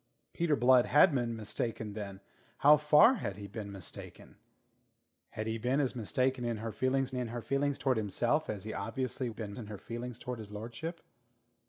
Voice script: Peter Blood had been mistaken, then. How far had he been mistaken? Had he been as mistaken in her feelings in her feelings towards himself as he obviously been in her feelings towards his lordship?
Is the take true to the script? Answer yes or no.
yes